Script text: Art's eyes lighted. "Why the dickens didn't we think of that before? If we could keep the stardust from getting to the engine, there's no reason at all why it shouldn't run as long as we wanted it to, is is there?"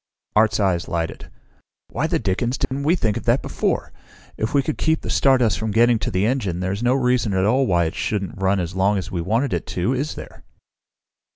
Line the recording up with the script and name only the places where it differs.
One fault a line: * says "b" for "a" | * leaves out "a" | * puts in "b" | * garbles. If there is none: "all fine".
* leaves out "is"